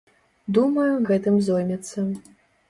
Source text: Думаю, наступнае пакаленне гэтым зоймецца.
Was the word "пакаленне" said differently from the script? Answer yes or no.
yes